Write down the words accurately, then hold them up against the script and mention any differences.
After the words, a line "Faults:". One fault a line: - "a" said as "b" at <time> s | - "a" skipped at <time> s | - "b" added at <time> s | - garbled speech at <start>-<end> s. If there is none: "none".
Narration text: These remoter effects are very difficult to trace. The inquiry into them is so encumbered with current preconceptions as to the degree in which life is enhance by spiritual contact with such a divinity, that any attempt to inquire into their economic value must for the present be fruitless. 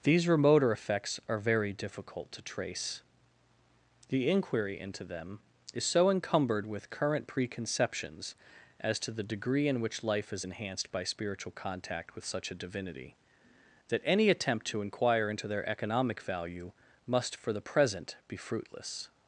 These remoter effects are very difficult to trace. The inquiry into them is so encumbered with current preconceptions as to the degree in which life is enhanced by spiritual contact with such a divinity, that any attempt to inquire into their economic value must for the present be fruitless.
Faults:
- "enhance" said as "enhanced" at 10.4 s